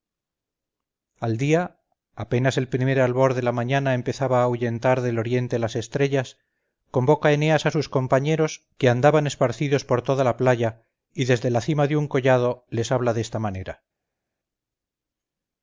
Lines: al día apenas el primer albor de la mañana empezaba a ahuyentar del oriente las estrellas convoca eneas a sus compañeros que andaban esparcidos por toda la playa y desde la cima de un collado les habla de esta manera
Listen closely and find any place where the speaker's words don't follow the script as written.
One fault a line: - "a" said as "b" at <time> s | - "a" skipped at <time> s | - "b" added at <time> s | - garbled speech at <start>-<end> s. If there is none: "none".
none